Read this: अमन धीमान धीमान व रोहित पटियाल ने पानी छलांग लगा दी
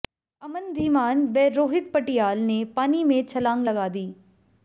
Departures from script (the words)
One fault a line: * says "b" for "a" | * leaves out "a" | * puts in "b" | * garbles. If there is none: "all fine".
* leaves out "धीमान"
* puts in "में"